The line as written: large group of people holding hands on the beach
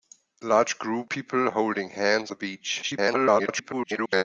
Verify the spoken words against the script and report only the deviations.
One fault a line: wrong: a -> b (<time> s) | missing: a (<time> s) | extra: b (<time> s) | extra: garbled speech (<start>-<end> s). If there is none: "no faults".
missing: of (1.1 s)
missing: on (2.3 s)
extra: garbled speech (2.8-4.2 s)